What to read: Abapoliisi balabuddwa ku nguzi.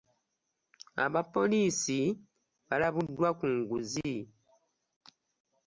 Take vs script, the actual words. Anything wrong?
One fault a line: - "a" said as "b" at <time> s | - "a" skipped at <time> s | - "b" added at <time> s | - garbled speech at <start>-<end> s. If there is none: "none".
none